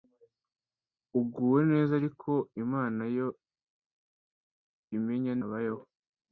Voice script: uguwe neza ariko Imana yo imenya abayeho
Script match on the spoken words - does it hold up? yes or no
yes